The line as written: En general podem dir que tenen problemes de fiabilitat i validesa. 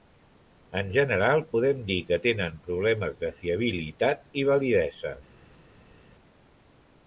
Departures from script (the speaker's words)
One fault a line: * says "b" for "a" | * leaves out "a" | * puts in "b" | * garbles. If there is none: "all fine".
all fine